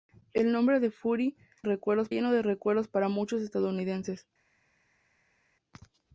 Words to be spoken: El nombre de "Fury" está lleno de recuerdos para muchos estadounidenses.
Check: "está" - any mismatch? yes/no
yes